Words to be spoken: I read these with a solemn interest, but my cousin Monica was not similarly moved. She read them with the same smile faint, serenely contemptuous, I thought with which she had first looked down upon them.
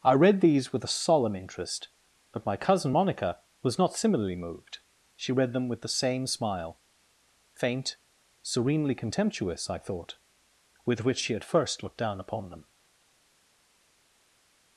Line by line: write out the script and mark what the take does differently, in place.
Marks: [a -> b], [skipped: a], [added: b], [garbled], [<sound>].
I read these with a solemn interest, but my cousin Monica was not similarly moved. She read them with the same smile faint, serenely contemptuous, I thought with which she had first looked down upon them.